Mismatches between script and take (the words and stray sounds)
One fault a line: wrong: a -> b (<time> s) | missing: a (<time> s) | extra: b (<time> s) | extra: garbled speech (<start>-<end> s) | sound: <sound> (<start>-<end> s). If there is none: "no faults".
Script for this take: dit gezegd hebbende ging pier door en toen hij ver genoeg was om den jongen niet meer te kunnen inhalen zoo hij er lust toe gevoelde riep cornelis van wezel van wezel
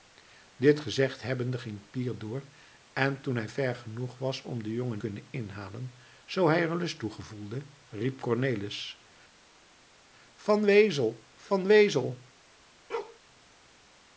missing: niet meer te (5.0 s)
sound: bark (12.9-13.2 s)